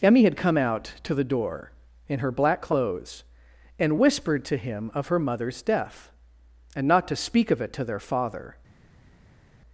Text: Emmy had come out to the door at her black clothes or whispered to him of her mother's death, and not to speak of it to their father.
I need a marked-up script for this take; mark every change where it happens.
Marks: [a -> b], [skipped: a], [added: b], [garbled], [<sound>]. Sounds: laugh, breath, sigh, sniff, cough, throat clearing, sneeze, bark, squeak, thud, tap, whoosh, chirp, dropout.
Emmy had come out to the door [at -> in] her black clothes [or -> and] whispered to him of her mother's death, and not to speak of it to their father.